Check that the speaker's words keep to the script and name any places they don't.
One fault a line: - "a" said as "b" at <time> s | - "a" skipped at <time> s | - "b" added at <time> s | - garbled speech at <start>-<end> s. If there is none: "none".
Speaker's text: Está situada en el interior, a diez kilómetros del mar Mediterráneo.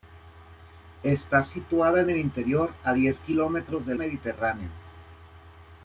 - "mar" skipped at 4.0 s